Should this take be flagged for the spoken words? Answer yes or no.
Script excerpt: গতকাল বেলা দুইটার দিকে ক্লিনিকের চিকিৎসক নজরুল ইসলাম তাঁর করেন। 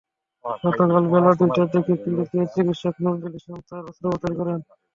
yes